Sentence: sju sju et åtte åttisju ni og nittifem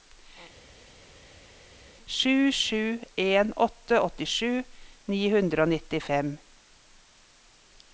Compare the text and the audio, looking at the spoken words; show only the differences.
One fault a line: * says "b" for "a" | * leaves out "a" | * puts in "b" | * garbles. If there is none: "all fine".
* says "en" for "et"
* puts in "hundre"